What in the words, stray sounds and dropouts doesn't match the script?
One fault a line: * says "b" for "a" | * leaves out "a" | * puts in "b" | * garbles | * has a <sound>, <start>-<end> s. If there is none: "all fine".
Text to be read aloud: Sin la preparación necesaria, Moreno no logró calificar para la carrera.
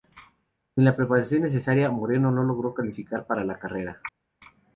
all fine